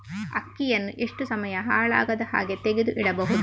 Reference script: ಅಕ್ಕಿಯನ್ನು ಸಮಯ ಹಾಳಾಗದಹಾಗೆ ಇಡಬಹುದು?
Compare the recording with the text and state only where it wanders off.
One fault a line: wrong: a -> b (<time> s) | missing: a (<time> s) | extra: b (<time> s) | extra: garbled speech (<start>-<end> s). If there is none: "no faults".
extra: ಎಷ್ಟು (1.0 s)
extra: ತೆಗೆದು (2.6 s)